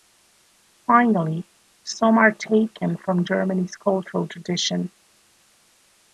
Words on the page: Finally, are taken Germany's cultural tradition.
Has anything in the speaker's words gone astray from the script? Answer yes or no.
yes